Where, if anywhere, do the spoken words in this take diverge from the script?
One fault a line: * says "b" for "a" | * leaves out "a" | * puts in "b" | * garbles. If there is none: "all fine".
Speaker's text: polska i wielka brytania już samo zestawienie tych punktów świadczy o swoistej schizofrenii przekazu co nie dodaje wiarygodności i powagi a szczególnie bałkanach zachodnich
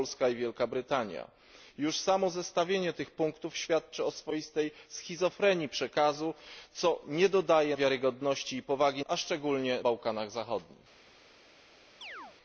all fine